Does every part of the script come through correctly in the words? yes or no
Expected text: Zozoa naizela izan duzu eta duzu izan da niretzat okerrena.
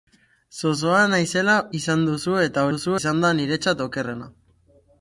yes